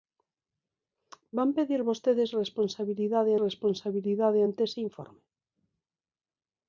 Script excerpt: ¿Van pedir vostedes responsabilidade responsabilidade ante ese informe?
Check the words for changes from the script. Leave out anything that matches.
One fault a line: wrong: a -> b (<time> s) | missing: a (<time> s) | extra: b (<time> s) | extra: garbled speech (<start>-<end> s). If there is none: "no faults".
no faults